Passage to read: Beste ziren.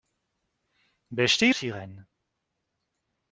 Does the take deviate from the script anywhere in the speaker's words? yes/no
no